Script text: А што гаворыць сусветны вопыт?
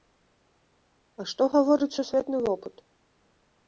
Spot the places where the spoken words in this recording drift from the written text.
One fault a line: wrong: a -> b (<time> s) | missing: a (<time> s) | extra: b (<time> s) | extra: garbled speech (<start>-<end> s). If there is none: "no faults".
no faults